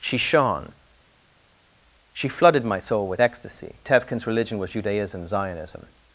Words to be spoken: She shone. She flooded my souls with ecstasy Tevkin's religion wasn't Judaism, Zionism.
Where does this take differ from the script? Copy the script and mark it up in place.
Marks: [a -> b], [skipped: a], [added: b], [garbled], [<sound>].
She shone. She flooded my [souls -> soul] with ecstasy Tevkin's religion [wasn't -> was] Judaism, Zionism.